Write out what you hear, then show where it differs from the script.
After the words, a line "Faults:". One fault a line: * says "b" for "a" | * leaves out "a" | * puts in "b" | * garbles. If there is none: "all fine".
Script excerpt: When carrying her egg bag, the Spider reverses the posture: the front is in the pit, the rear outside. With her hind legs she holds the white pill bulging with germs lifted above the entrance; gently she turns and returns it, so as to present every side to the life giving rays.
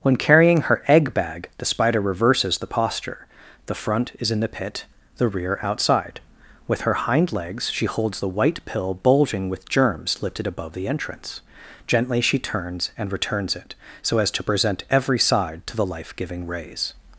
When carrying her egg bag, the Spider reverses the posture: the front is in the pit, the rear outside. With her hind legs she holds the white pill bulging with germs lifted above the entrance; gently she turns and returns it, so as to present every side to the life giving rays.
Faults:
all fine